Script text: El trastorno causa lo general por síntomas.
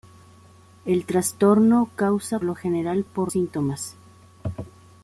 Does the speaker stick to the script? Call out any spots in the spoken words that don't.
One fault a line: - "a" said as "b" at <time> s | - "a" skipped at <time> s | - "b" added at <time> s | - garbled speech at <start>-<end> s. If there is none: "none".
none